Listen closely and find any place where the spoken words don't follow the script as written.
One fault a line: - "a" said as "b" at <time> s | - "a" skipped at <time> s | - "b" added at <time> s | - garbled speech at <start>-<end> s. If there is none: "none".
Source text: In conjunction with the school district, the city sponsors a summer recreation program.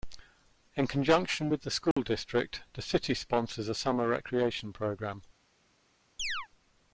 none